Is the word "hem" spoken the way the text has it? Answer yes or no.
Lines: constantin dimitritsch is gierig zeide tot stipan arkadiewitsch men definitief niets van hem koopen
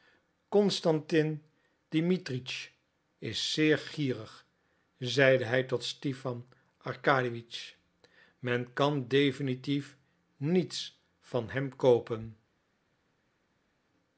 yes